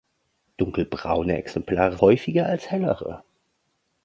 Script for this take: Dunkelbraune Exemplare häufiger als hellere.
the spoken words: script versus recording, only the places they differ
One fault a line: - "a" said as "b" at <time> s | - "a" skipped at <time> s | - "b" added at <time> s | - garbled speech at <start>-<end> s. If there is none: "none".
none